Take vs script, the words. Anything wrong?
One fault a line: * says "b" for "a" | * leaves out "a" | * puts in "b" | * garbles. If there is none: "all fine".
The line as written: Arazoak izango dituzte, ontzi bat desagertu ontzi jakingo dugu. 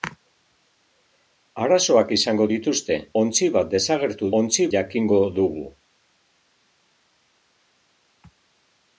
all fine